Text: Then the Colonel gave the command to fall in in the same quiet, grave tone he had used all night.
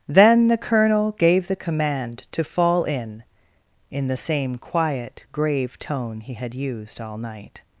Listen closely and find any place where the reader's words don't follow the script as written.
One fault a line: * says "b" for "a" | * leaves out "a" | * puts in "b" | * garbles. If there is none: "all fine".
all fine